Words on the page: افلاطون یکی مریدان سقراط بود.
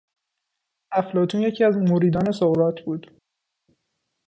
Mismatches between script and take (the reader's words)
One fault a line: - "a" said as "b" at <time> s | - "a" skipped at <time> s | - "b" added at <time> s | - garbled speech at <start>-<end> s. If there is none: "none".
- "از" added at 1.6 s